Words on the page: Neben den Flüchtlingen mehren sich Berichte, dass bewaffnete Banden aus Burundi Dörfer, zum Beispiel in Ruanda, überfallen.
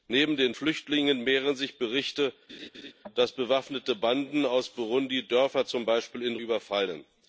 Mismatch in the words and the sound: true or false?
true